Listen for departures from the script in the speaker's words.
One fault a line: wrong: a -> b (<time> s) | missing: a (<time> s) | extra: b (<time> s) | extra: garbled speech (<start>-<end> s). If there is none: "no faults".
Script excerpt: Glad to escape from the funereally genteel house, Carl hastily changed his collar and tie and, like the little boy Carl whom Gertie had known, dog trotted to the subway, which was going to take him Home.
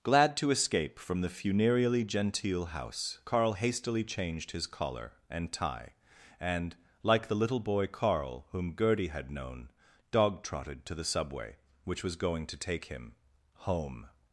no faults